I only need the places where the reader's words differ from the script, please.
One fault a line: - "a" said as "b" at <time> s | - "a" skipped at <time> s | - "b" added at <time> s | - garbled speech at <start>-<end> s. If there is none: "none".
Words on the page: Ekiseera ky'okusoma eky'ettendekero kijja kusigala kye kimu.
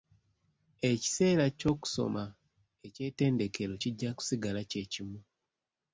none